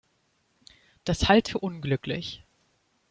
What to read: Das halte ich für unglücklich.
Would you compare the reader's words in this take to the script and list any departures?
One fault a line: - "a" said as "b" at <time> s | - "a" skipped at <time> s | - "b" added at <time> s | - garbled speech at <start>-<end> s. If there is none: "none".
- "ich" skipped at 1.5 s